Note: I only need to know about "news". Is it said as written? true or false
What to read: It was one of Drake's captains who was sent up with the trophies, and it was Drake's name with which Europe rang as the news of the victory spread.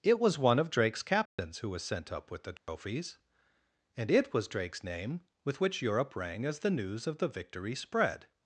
true